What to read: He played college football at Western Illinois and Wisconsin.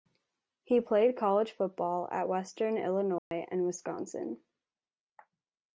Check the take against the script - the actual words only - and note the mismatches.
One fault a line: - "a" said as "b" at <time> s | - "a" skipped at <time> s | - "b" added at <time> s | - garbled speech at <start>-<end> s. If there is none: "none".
none